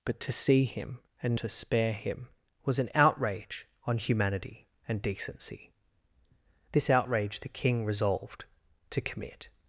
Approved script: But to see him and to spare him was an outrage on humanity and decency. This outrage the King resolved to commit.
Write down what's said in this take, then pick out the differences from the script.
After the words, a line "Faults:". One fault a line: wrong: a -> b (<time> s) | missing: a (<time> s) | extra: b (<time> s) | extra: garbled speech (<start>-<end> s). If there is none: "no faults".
But to see him and to spare him was an outrage on humanity and decency. This outrage the King resolved to commit.
Faults:
no faults